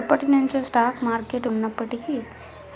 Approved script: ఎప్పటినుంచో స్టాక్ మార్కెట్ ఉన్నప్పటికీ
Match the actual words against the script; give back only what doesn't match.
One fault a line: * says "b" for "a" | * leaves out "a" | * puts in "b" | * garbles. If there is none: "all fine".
all fine